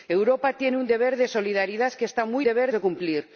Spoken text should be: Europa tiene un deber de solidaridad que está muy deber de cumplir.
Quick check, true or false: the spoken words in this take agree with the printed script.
true